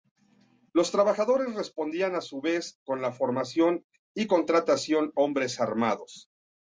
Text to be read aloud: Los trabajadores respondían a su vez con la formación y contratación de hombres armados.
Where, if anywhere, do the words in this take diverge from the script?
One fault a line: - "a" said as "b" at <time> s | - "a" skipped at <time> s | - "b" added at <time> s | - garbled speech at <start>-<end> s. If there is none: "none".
- "de" skipped at 5.1 s